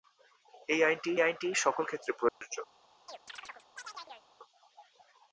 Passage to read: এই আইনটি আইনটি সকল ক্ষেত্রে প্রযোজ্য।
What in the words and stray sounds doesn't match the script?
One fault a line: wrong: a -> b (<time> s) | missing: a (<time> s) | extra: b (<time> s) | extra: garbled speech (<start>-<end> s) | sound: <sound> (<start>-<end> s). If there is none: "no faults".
sound: dropout (2.3-2.4 s)
sound: chirp (3.1-4.3 s)